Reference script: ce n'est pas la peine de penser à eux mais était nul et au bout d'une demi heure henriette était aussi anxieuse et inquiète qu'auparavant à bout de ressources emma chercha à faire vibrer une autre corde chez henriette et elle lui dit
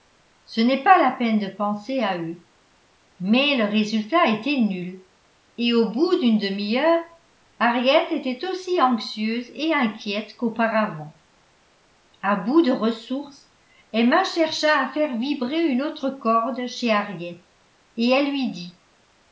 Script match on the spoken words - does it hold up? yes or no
no